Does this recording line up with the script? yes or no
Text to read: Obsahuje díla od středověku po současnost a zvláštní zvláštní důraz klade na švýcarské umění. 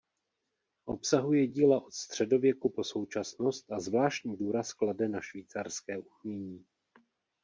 no